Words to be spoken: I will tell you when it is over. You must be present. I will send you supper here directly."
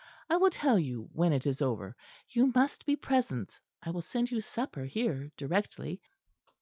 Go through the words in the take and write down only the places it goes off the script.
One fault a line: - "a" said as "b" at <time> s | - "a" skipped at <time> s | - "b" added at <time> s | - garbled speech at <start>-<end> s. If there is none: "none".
none